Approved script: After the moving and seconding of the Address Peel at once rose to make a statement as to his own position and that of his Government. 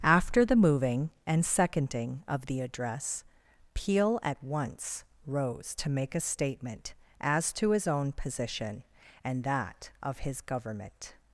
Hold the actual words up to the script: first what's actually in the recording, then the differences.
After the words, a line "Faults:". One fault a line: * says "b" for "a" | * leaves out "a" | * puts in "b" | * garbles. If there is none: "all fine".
After the moving and seconding of the Address Peel at once rose to make a statement as to his own position and that of his Government.
Faults:
all fine